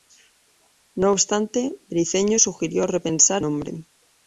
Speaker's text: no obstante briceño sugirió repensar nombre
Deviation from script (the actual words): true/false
false